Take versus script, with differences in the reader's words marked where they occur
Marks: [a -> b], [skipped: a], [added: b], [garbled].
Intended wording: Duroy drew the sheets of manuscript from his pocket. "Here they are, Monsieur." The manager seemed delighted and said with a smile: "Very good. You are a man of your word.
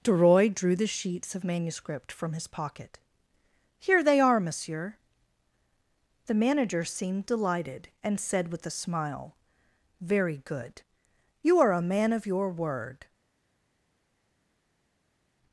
Duroy drew the sheets of manuscript from his pocket. "Here they are, Monsieur." The manager seemed delighted and said with a smile: "Very good. You are a man of your word.